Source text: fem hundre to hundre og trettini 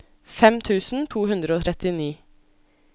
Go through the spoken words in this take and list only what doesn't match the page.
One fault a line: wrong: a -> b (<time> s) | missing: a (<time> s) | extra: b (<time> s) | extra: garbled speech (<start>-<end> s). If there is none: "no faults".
wrong: hundre -> tusen (0.7 s)